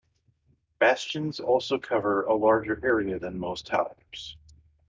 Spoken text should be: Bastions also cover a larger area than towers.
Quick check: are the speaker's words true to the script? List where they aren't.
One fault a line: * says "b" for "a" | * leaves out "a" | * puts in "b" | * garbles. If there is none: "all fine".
* puts in "most"